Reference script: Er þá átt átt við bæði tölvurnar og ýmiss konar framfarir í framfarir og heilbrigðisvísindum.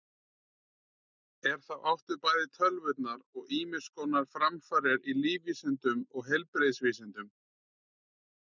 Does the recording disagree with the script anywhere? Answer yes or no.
yes